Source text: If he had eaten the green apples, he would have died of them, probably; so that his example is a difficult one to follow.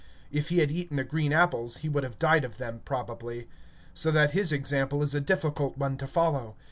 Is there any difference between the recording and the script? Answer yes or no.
no